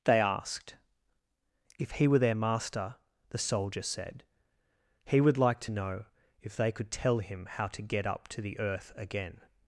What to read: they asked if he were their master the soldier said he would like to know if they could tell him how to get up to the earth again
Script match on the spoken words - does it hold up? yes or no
yes